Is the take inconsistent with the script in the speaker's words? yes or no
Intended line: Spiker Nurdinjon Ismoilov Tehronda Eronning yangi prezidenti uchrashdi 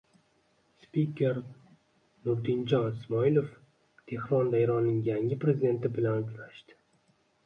yes